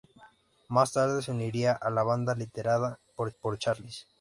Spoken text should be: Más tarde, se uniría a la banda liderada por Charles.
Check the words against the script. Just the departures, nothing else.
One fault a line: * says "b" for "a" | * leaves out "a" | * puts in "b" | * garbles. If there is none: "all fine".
* puts in "por"